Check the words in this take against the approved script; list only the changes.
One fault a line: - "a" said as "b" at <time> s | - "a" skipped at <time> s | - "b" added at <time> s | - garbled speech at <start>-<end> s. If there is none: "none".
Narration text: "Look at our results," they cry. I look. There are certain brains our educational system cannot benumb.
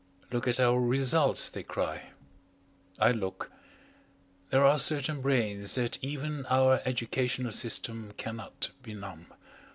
- "that even" added at 5.8 s